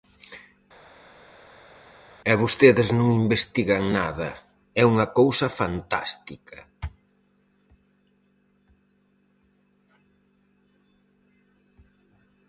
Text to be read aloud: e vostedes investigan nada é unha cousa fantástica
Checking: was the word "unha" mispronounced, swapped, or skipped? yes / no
no